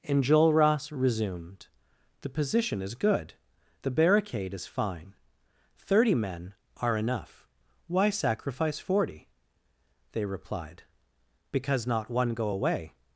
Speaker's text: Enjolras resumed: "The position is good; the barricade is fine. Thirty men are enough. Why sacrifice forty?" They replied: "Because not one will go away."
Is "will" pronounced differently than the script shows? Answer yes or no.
yes